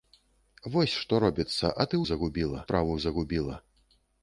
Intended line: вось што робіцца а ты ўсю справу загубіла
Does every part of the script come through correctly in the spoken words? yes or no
no